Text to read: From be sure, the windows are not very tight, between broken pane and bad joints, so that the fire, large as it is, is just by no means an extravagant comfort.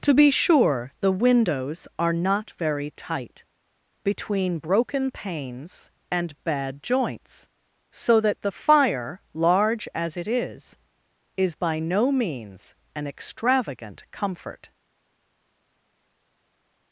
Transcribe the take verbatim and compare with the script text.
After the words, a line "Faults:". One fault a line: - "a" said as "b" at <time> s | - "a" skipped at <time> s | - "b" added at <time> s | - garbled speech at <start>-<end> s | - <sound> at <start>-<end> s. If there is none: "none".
To be sure, the windows are not very tight, between broken panes and bad joints, so that the fire, large as it is, is by no means an extravagant comfort.
Faults:
- "From" said as "To" at 0.0 s
- "pane" said as "panes" at 5.1 s
- "just" skipped at 11.6 s